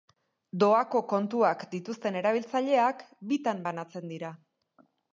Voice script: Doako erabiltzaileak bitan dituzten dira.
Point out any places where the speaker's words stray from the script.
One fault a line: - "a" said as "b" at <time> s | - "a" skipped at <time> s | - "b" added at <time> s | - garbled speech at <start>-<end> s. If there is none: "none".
- "kontuak dituzten" added at 1.1 s
- "dituzten" said as "banatzen" at 3.7 s